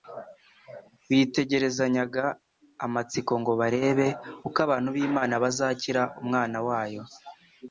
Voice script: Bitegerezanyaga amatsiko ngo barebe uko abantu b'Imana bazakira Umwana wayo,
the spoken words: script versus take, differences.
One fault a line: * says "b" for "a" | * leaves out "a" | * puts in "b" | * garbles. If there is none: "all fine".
all fine